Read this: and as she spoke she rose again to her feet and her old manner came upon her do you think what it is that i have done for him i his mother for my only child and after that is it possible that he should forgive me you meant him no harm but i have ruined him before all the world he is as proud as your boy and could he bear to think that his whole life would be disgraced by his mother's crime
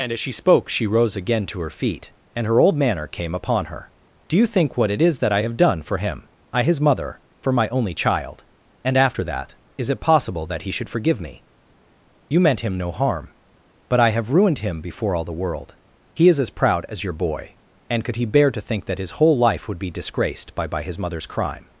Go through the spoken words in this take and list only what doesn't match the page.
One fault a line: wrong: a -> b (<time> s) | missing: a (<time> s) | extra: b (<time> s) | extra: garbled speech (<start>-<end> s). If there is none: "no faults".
extra: by (20.6 s)